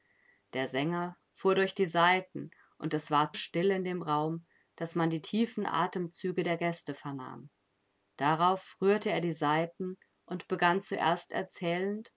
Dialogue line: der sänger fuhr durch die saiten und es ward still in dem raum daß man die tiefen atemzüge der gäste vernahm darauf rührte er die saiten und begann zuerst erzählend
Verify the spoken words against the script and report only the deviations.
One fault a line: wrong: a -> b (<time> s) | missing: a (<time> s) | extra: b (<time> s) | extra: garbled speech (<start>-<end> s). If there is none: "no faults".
no faults